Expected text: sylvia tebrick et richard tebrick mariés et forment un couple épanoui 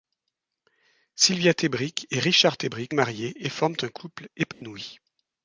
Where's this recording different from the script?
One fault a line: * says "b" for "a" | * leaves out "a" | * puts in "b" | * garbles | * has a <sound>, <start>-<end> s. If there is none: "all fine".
* has a dropout, 4.5-4.6 s